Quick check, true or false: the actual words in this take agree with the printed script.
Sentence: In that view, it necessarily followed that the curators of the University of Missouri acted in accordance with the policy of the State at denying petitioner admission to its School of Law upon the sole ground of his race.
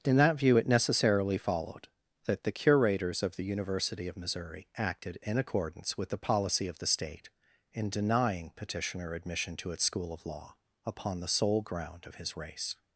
false